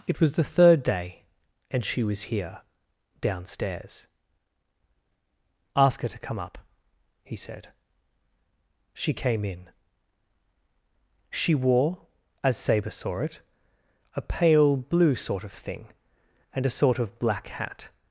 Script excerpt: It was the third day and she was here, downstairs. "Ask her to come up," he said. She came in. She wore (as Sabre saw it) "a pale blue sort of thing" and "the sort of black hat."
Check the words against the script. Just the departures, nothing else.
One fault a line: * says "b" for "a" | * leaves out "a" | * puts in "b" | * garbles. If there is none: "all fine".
* says "a" for "the"